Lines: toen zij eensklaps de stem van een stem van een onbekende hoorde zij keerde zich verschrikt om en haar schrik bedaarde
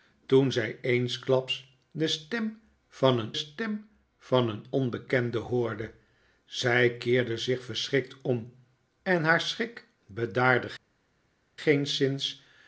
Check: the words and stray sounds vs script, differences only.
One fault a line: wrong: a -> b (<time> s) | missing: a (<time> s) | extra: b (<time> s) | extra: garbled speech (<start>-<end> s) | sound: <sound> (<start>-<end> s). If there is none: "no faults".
no faults